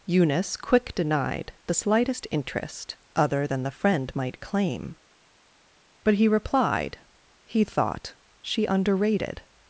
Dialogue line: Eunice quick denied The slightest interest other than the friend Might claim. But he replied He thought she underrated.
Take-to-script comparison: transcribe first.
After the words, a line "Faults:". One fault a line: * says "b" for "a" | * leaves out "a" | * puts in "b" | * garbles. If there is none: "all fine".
Eunice quick denied The slightest interest other than the friend Might claim. But he replied He thought she underrated.
Faults:
all fine